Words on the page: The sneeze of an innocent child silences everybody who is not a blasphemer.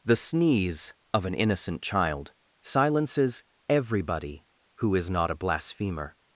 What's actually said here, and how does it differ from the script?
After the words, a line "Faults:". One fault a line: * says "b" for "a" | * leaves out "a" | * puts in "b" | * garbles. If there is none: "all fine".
The sneeze of an innocent child silences everybody who is not a blasphemer.
Faults:
all fine